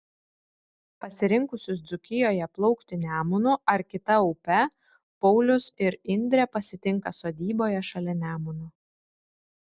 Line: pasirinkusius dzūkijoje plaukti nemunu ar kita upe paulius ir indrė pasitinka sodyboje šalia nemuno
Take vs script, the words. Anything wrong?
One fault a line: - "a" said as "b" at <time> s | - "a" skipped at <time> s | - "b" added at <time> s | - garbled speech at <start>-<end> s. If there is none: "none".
none